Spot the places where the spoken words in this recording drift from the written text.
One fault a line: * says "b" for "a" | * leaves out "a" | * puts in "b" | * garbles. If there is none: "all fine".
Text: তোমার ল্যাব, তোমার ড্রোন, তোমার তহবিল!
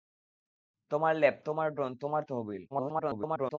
* garbles